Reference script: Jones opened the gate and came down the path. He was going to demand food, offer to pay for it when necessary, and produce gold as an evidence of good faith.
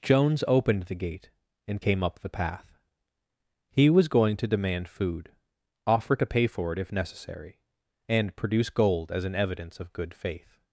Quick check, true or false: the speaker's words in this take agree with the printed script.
false